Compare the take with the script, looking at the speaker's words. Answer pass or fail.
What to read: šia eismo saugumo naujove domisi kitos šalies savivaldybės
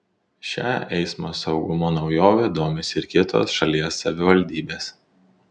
fail